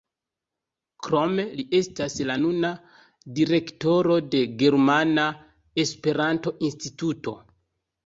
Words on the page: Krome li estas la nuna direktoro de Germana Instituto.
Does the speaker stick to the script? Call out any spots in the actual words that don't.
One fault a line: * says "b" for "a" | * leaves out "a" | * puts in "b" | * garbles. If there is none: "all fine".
* puts in "Esperanto"